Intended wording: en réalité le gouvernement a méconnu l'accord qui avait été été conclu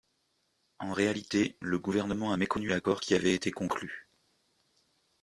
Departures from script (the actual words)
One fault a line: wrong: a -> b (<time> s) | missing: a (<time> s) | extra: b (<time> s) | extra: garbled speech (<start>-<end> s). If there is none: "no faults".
missing: été (3.5 s)